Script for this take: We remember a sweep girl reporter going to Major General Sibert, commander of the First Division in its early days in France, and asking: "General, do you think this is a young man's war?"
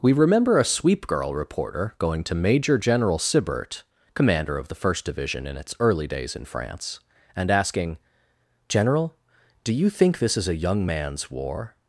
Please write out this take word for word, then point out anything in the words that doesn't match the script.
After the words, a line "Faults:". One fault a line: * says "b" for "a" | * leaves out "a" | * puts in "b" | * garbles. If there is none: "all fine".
We remember a sweep girl reporter going to Major General Sibert, commander of the First Division in its early days in France, and asking: "General, do you think this is a young man's war?"
Faults:
all fine